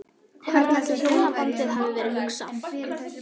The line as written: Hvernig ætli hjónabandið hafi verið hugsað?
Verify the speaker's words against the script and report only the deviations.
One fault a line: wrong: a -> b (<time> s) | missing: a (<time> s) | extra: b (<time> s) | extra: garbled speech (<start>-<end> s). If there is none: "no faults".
no faults